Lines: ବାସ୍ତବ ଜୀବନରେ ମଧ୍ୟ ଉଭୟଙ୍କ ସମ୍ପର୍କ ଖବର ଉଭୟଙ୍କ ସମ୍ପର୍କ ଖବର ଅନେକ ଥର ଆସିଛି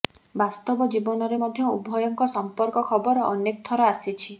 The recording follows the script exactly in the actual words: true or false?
false